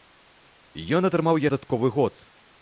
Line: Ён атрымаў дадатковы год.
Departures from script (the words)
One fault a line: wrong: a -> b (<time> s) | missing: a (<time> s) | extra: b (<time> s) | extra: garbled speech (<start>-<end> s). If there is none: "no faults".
no faults